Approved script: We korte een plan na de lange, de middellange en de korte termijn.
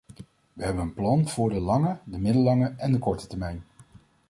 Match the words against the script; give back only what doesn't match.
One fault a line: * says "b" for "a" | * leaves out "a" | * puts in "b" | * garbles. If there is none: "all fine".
* says "hebben" for "korte"
* says "voor" for "na"